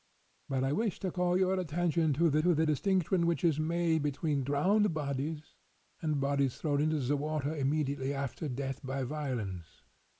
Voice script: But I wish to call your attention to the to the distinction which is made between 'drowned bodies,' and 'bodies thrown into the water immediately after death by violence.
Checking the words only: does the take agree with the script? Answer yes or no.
yes